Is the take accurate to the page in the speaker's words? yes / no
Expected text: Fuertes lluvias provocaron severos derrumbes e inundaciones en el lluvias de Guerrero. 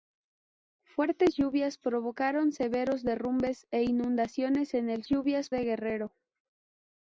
yes